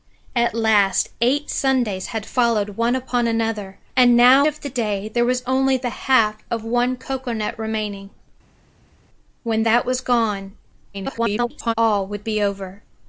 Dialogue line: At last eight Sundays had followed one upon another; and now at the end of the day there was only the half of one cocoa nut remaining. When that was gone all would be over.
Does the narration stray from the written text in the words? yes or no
yes